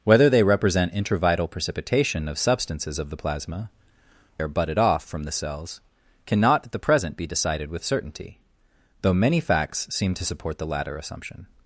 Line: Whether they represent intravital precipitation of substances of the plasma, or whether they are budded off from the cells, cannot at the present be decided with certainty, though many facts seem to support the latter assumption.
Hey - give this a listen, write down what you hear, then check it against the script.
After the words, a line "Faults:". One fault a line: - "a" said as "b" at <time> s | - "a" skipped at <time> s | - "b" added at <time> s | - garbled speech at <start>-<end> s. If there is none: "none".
Whether they represent intravital precipitation of substances of the plasma, are budded off from the cells, cannot at the present be decided with certainty, though many facts seem to support the latter assumption.
Faults:
- "or whether they" skipped at 3.7 s